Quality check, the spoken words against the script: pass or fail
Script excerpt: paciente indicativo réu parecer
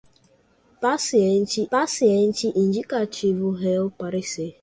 fail